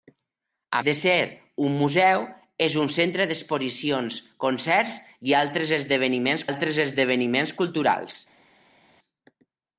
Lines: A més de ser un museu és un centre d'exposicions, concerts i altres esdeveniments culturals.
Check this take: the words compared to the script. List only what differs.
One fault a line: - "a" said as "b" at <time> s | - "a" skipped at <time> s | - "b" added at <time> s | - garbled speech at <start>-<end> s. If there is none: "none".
- "més" skipped at 0.8 s
- "altres esdeveniments" added at 6.5 s